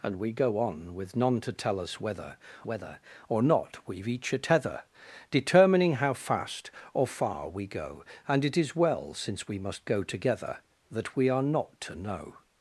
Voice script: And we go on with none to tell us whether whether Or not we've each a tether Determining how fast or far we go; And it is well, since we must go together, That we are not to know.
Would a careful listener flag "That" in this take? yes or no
no